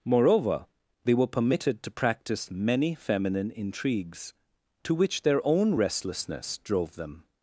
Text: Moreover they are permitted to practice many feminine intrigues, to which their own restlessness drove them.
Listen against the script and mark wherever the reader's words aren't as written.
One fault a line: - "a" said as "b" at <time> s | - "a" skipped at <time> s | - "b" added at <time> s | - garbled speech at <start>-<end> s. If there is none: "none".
- "are" said as "were" at 1.1 s